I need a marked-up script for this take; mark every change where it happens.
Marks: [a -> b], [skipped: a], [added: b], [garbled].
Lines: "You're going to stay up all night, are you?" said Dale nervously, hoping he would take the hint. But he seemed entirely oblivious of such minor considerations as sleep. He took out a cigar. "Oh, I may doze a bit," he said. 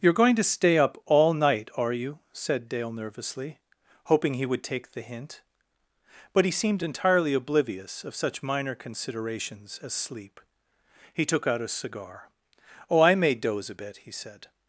"You're going to stay up all night, are you?" said Dale nervously, hoping he would take the hint. But he seemed entirely oblivious of such minor considerations as sleep. He took out a cigar. "Oh, I may doze a bit," he said.